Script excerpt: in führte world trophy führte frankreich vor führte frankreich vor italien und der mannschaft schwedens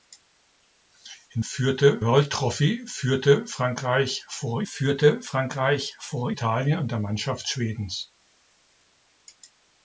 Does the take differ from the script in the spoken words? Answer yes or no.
no